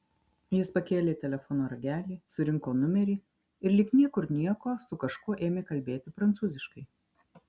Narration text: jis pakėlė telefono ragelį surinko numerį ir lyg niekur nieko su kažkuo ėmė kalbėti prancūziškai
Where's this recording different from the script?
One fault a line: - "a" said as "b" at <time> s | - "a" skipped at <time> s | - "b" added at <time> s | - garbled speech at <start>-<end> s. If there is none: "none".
none